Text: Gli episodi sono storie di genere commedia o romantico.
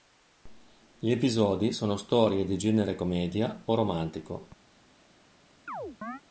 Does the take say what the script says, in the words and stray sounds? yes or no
no